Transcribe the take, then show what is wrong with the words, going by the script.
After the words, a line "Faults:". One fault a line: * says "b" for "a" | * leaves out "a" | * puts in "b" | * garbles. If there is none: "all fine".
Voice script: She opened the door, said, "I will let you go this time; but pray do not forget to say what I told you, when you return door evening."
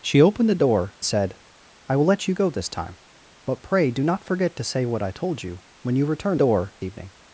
She opened the door, said, "I will let you go this time; but pray do not forget to say what I told you, when you return door evening."
Faults:
all fine